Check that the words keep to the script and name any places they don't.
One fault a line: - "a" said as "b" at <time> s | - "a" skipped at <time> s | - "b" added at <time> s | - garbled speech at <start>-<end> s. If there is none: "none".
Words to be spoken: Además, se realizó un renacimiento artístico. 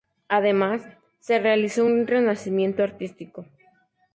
none